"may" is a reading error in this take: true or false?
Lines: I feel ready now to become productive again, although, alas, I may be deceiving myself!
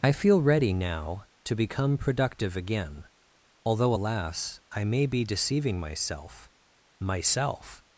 false